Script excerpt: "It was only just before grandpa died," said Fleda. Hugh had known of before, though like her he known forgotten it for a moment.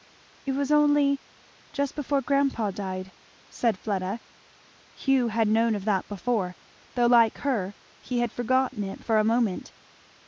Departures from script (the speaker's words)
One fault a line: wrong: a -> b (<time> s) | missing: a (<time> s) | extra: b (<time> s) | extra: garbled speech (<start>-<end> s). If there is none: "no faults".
extra: that (5.8 s)
wrong: known -> had (8.2 s)